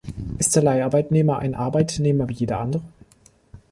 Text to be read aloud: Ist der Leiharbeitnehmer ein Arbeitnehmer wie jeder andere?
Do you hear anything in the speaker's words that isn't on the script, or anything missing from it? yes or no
no